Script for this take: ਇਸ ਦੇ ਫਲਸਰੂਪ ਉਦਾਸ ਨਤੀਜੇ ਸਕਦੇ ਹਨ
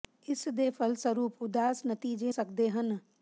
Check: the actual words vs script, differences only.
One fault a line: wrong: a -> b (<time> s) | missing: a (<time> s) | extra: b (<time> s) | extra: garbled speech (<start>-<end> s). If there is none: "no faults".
no faults